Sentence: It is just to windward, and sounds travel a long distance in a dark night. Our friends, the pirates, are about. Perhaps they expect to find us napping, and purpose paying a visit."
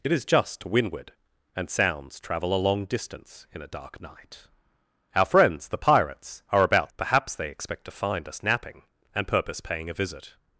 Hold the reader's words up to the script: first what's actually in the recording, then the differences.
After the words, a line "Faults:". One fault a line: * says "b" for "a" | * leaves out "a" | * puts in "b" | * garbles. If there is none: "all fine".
It is just to windward, and sounds travel a long distance in a dark night. Our friends, the pirates, are about. Perhaps they expect to find us napping, and purpose paying a visit."
Faults:
all fine